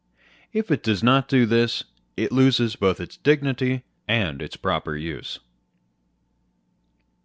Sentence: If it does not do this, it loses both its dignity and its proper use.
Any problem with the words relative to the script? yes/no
no